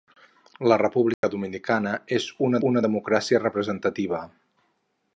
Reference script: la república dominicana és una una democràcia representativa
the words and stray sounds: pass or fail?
fail